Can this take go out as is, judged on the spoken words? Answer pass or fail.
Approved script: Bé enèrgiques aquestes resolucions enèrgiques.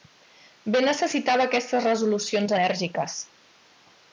fail